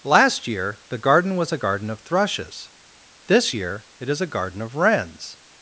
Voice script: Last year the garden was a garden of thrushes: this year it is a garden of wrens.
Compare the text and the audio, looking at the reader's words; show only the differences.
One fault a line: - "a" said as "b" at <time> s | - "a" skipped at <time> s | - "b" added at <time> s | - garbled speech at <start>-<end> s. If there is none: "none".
none